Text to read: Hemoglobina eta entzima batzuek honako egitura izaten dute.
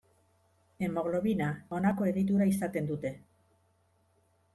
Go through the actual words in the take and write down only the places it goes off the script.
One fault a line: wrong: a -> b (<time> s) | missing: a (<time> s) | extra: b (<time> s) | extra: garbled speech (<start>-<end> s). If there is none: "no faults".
missing: eta entzima batzuek (1.5 s)